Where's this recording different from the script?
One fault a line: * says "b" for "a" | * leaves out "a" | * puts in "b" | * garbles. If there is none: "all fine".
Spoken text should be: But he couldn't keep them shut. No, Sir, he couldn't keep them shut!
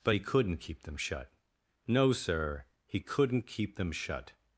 all fine